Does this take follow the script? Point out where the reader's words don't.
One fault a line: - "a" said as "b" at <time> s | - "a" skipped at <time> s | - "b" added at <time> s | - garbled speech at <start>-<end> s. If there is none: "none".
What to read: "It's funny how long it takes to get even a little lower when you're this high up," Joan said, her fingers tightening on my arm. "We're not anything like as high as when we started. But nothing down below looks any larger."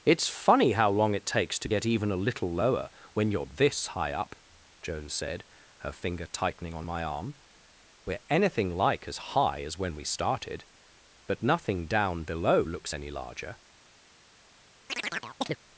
- "fingers" said as "finger" at 5.9 s
- "not" skipped at 8.2 s